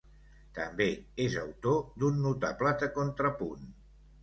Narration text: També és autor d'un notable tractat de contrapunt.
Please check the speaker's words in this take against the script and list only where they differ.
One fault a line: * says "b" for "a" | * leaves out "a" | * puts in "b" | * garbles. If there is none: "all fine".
* leaves out "tractat"